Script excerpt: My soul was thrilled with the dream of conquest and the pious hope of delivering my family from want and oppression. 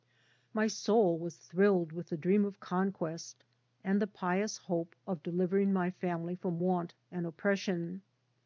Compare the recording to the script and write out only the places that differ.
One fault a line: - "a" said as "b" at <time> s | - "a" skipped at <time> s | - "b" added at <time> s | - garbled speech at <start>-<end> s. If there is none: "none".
none